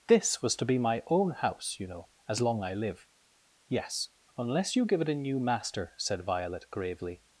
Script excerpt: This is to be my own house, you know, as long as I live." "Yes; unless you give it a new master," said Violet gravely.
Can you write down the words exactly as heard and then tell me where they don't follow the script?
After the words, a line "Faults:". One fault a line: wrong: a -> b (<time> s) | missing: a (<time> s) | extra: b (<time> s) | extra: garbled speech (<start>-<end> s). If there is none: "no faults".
This was to be my own house, you know, as long I live." "Yes; unless you give it a new master," said Violet gravely.
Faults:
wrong: is -> was (0.4 s)
missing: as (2.6 s)